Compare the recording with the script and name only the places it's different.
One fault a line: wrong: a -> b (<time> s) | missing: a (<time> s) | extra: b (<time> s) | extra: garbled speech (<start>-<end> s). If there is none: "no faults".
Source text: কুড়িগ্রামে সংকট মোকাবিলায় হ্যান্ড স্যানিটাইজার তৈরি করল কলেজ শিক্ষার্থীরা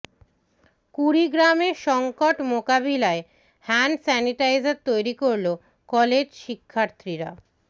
no faults